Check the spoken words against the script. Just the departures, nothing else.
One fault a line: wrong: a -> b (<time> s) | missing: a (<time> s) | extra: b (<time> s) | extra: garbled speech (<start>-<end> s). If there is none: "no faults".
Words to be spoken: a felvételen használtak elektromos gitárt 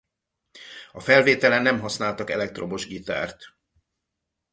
extra: nem (1.6 s)